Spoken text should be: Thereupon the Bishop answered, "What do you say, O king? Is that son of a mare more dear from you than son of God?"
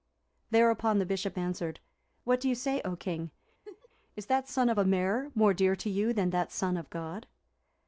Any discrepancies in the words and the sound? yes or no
yes